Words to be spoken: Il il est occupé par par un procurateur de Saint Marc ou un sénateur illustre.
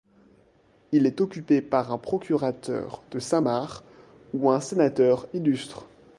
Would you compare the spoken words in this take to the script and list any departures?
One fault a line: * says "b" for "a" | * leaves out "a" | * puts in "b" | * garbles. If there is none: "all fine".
* leaves out "il"
* leaves out "par"